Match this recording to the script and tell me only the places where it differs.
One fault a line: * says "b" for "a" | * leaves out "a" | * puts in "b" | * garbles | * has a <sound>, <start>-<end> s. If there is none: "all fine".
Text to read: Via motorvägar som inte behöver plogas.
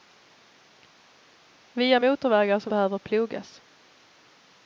* leaves out "inte"